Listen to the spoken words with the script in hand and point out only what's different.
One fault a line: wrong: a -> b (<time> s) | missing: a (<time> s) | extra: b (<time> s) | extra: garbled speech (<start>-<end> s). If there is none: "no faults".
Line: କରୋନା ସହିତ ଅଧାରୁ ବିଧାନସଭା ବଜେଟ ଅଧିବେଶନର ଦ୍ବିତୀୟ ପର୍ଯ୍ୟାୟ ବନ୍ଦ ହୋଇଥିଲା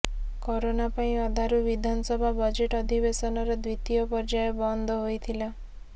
wrong: ସହିତ -> ପାଇଁ (0.9 s)